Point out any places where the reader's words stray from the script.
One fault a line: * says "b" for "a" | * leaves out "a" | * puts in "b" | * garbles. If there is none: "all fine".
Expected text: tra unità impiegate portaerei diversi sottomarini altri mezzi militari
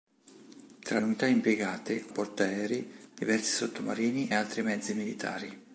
all fine